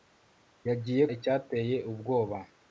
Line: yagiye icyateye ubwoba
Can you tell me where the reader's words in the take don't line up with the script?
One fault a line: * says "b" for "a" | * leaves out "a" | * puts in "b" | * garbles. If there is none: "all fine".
all fine